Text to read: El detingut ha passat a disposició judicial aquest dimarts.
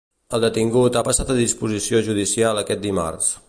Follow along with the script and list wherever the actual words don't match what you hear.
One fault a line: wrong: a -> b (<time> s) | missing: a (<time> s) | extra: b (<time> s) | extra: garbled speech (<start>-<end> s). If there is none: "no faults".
no faults